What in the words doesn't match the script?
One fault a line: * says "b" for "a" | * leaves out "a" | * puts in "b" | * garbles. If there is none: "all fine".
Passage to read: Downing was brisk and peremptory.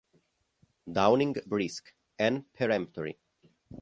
* leaves out "was"